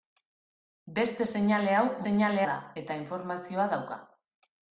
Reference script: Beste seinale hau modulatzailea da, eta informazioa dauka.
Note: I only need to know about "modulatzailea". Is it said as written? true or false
false